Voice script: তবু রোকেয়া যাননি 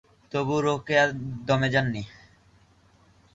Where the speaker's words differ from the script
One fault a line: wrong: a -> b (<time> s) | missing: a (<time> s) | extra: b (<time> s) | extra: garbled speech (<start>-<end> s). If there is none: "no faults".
extra: দমে (1.5 s)